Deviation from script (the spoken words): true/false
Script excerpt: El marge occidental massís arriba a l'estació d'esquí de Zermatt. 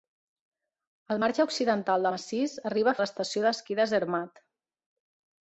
false